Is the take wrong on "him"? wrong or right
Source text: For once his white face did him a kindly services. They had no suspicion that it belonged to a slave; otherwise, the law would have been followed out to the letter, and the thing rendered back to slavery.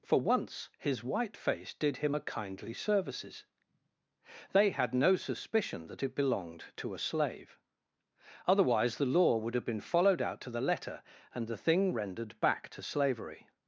right